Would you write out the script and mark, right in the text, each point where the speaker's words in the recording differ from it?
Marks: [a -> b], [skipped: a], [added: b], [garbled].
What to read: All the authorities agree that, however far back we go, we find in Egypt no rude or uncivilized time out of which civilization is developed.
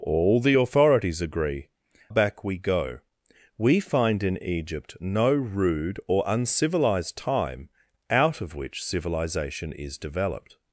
All the authorities agree [skipped: that, however far] back we go, we find in Egypt no rude or uncivilized time out of which civilization is developed.